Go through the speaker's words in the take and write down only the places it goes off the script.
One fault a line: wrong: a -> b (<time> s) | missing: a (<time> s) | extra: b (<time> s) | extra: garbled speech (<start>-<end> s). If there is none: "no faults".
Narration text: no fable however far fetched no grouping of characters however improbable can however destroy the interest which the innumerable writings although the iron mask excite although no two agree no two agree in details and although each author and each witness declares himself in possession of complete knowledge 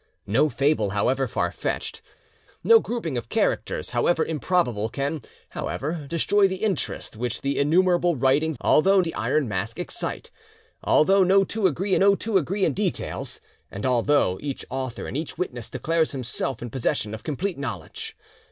no faults